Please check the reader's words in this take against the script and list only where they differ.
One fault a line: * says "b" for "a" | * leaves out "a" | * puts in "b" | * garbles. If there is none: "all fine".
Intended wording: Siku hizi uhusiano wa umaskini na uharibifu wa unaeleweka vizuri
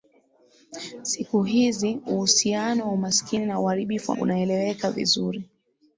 all fine